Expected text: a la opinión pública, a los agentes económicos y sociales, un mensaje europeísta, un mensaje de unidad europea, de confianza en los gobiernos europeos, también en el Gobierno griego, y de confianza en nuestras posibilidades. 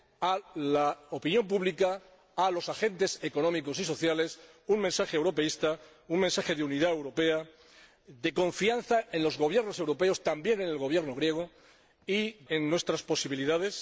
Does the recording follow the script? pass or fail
fail